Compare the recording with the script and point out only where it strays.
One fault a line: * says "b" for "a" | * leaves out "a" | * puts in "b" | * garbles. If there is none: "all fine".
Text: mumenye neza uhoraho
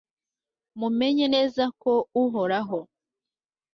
* puts in "ko"